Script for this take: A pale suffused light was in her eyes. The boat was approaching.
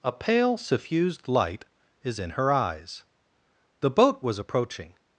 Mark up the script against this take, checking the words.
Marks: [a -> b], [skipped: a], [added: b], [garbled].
A pale suffused light [was -> is] in her eyes. The boat was approaching.